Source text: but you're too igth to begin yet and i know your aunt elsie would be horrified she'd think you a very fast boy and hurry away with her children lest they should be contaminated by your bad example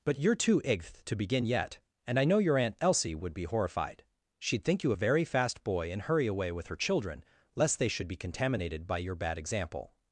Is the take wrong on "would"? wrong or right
right